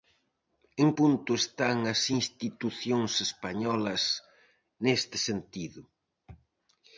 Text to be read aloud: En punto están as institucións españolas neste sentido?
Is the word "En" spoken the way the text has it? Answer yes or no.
yes